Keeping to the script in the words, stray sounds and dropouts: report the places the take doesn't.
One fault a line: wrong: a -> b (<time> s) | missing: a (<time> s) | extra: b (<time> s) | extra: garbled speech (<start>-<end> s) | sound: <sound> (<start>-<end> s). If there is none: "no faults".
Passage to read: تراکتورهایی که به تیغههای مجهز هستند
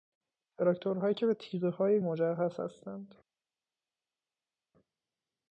no faults